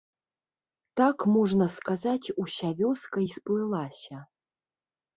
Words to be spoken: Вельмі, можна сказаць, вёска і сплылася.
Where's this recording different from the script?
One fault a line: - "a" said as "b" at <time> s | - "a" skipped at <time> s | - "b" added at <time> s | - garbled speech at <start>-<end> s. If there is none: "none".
- "Вельмі" said as "Так" at 1.0 s
- "уся" added at 2.5 s